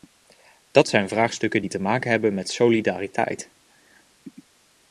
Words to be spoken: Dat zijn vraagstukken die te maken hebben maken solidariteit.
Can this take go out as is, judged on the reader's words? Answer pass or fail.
fail